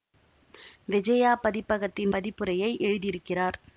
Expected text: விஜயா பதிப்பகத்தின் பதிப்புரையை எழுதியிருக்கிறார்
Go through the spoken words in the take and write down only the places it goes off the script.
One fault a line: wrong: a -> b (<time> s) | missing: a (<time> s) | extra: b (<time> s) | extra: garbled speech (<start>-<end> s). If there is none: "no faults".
no faults